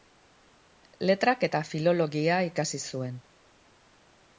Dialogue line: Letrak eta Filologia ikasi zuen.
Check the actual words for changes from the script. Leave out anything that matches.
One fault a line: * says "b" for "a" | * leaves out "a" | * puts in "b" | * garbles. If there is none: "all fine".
all fine